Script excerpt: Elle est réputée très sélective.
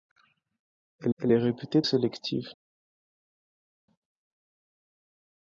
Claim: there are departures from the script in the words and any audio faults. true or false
true